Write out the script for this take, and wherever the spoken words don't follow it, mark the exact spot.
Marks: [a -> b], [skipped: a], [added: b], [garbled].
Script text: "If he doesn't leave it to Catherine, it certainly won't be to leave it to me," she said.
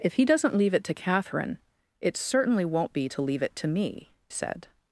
"If he doesn't leave it to Catherine, it certainly won't be to leave it to me," [skipped: she] said.